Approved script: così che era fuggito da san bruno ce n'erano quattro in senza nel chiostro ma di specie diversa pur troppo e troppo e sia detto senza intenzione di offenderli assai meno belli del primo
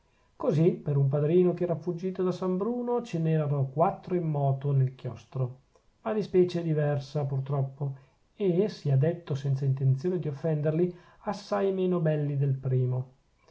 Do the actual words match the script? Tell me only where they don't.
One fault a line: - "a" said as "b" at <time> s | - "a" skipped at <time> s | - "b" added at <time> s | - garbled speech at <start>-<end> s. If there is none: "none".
- "per un padrino" added at 0.7 s
- "senza" said as "moto" at 4.3 s
- "troppo e" skipped at 8.7 s